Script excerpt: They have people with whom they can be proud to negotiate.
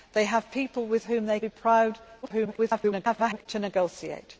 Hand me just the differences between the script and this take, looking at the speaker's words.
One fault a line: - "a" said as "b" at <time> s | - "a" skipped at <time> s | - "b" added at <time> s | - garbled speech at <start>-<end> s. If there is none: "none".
- "can" skipped at 1.4 s
- garbled speech at 2.2-3.5 s